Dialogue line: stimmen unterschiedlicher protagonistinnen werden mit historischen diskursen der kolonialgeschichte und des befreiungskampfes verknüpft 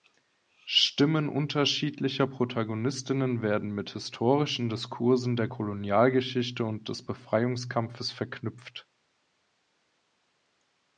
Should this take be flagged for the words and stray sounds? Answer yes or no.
no